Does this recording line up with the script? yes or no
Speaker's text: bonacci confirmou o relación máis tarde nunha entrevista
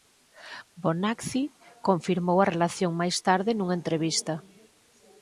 no